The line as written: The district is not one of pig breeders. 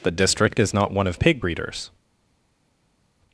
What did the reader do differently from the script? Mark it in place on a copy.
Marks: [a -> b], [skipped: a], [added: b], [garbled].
The district is not one of pig breeders.